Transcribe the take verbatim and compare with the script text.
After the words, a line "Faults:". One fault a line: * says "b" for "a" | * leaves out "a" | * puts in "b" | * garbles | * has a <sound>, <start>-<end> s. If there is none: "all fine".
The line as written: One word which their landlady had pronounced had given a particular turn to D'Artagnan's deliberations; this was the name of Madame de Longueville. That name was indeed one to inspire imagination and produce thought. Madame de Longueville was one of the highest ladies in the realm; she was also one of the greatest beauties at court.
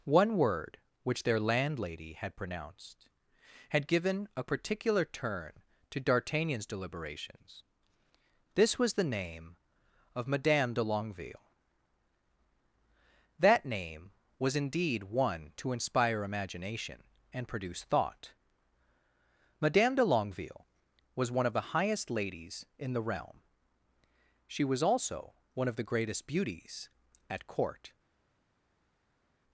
One word which their landlady had pronounced had given a particular turn to D'Artagnan's deliberations; this was the name of Madame de Longueville. That name was indeed one to inspire imagination and produce thought. Madame de Longueville was one of the highest ladies in the realm; she was also one of the greatest beauties at court.
Faults:
all fine